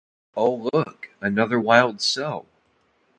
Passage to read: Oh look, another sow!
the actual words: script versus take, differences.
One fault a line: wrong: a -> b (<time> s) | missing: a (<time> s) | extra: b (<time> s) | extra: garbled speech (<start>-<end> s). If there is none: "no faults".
extra: wild (1.6 s)